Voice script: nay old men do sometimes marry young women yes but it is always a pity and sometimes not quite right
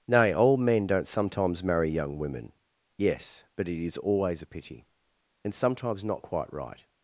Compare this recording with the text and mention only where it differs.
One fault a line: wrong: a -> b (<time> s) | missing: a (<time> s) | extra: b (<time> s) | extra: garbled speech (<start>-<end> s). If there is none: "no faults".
wrong: do -> don't (0.9 s)